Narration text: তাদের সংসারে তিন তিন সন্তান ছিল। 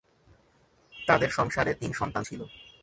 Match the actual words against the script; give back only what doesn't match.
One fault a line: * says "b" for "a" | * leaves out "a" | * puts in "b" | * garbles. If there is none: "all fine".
* leaves out "তিন"